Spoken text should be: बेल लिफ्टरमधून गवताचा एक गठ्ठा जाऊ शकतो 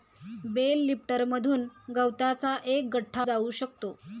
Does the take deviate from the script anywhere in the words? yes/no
no